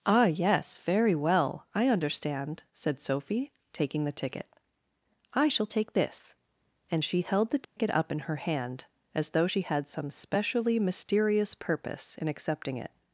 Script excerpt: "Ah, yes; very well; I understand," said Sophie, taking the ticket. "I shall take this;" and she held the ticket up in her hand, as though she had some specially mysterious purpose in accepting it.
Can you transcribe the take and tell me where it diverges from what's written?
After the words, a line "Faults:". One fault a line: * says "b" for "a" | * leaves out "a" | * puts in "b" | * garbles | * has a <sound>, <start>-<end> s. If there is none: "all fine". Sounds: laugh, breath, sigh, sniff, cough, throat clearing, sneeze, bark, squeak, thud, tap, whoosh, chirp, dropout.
"Ah, yes; very well; I understand," said Sophie, taking the ticket. "I shall take this;" and she held the ticket up in her hand, as though she had some specially mysterious purpose in accepting it.
Faults:
* has a dropout, 7.6-7.8 s